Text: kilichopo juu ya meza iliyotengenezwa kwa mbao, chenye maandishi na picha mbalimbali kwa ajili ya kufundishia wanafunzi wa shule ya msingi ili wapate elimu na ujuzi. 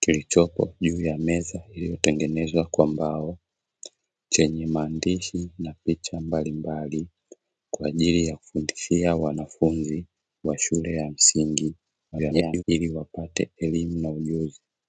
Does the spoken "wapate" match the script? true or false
true